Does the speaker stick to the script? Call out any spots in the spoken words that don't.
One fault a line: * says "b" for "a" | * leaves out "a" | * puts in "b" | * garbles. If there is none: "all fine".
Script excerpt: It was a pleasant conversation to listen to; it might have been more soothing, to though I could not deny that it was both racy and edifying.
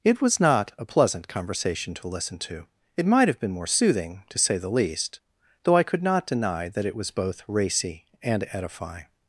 * puts in "not"
* puts in "say the least"